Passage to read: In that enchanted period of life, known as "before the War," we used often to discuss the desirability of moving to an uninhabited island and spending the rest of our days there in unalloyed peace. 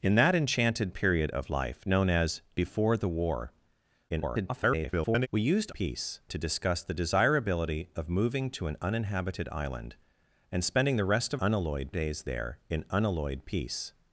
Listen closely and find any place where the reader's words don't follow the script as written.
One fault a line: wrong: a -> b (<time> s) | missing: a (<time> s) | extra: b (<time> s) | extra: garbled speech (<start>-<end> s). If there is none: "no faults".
extra: garbled speech (4.1-5.3 s)
wrong: often -> peace (5.7 s)
wrong: our -> unalloyed (11.4 s)